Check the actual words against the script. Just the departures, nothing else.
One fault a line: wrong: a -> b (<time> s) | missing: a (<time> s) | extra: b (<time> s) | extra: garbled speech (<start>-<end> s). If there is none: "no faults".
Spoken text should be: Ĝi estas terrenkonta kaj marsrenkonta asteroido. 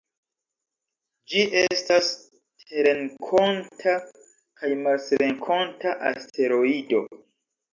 no faults